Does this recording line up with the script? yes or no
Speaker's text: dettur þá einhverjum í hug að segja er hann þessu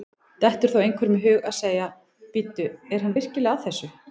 no